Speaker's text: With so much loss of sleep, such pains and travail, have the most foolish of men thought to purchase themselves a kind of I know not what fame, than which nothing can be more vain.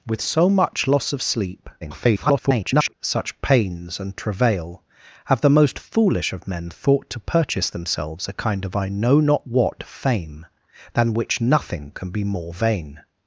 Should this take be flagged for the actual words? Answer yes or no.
yes